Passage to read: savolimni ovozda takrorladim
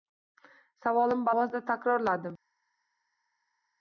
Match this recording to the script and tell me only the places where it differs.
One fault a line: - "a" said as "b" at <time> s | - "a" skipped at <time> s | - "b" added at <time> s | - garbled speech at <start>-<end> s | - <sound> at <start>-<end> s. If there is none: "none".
none